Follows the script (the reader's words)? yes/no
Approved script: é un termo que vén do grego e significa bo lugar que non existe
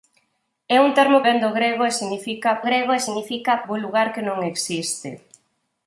no